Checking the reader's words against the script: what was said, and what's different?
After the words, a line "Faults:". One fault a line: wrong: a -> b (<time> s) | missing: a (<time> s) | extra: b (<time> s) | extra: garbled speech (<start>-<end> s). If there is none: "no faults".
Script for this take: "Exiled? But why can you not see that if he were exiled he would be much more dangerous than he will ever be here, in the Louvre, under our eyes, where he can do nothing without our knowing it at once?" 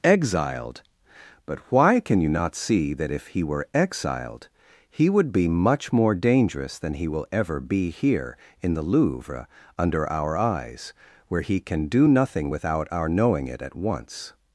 "Exiled? But why can you not see that if he were exiled he would be much more dangerous than he will ever be here, in the Louvre, under our eyes, where he can do nothing without our knowing it at once?"
Faults:
no faults